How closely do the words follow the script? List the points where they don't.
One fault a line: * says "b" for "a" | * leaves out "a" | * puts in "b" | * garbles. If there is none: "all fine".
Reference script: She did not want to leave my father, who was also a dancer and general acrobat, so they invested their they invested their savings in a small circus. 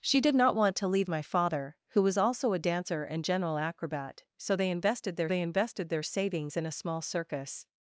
all fine